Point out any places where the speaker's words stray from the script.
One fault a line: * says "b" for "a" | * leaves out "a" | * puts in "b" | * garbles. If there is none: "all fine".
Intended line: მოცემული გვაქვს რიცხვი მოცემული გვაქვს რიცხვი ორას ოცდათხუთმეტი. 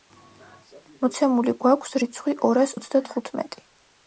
* leaves out "მოცემული გვაქვს რიცხვი"